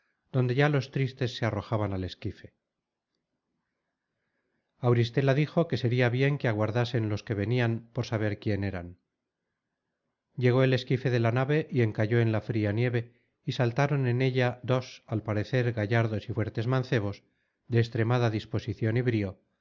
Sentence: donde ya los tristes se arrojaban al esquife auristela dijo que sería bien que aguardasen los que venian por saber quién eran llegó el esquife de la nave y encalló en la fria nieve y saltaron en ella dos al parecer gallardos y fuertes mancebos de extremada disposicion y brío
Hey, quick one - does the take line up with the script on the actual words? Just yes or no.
yes